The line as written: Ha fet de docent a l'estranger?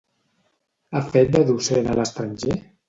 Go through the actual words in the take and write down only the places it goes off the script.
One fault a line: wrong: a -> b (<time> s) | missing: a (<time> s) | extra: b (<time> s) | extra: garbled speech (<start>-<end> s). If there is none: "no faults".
no faults